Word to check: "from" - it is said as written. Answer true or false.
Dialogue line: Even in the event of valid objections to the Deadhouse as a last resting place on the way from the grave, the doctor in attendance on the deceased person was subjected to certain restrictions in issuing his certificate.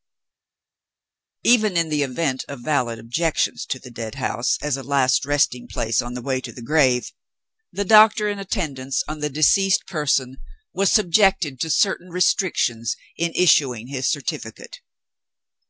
false